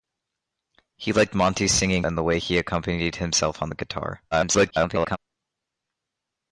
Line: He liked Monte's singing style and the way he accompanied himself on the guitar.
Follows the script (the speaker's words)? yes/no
no